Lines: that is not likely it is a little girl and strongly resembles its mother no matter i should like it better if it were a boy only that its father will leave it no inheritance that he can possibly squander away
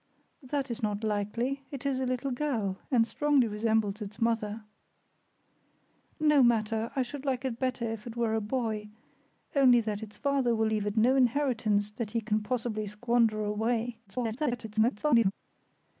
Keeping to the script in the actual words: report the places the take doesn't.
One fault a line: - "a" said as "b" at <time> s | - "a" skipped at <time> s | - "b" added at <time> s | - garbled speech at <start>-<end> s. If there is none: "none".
- garbled speech at 14.1-15.3 s